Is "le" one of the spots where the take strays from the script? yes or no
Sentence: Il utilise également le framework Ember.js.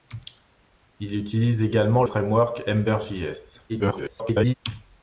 yes